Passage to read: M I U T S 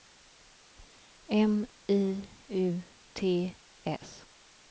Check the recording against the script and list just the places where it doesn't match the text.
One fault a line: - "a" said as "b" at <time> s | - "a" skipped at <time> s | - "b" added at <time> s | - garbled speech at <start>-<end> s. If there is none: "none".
none